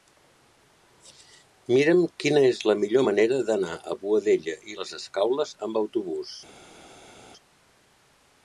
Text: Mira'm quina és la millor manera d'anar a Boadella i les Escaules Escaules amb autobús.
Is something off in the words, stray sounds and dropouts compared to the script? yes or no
yes